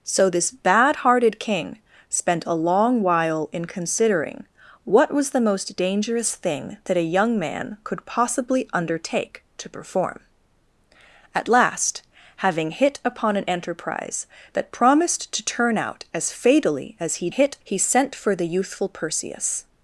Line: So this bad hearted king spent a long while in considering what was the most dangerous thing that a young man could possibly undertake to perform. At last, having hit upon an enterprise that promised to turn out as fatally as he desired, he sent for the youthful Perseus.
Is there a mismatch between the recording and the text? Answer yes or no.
yes